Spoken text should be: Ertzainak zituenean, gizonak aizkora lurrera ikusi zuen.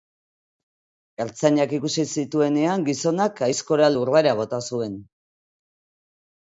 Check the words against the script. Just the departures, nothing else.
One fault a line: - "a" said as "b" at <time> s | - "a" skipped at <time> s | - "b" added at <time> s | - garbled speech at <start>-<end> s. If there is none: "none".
- "ikusi" added at 1.8 s
- "ikusi" said as "bota" at 4.4 s